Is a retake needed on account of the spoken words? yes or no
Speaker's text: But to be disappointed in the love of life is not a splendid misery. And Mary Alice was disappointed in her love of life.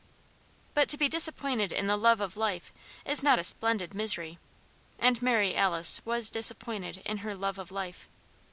no